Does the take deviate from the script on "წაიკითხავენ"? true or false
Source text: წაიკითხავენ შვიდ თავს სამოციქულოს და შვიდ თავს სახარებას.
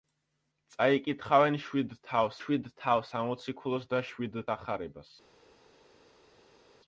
false